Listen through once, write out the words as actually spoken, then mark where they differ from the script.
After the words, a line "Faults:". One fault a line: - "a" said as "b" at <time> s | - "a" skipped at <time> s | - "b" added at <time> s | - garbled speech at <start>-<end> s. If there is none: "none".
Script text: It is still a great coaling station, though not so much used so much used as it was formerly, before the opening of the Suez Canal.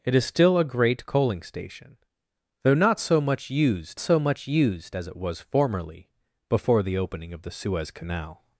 It is still a great coaling station, though not so much used so much used as it was formerly, before the opening of the Suez Canal.
Faults:
none